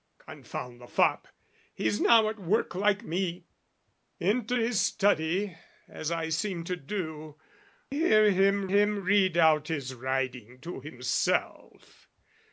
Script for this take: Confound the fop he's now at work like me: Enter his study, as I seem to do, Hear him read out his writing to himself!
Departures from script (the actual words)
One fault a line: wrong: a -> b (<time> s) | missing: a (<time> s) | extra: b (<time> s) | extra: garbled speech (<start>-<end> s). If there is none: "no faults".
extra: him (8.7 s)